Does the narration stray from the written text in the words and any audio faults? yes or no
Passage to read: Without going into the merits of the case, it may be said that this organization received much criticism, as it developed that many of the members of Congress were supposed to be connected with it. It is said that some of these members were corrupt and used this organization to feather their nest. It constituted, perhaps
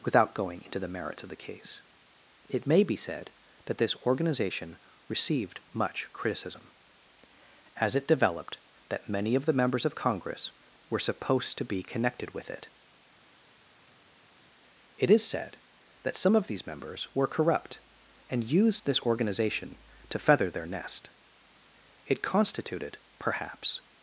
no